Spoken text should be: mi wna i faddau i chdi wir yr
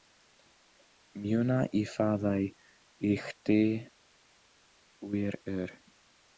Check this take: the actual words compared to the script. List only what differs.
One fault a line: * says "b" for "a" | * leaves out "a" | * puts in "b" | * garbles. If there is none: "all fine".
all fine